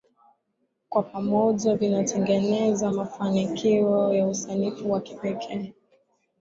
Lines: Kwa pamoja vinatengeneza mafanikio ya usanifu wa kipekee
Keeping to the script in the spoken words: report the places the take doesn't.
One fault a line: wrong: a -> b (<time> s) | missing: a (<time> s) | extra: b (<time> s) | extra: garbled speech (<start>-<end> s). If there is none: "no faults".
no faults